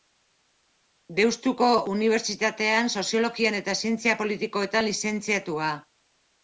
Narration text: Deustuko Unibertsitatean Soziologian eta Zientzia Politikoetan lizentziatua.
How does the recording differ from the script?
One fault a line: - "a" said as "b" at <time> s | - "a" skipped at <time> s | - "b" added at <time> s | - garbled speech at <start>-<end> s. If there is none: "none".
none